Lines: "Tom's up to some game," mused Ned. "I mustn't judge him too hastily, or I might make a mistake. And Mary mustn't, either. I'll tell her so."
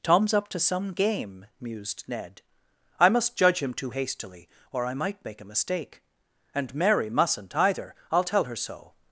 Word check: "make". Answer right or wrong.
right